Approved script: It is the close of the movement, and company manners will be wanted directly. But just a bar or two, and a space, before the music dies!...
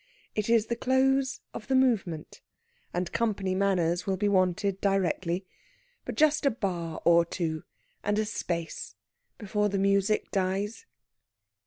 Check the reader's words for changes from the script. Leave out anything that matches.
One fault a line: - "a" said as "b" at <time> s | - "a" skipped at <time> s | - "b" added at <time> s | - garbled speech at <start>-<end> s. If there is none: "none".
none